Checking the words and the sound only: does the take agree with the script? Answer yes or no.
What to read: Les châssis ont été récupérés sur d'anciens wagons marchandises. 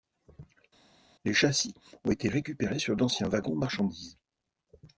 yes